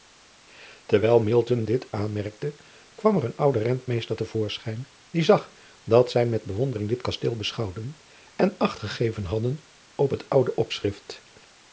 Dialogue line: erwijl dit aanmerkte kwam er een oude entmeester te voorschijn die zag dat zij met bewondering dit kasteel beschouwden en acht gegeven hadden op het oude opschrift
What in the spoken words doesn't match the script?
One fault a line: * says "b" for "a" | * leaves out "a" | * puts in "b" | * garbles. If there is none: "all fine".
all fine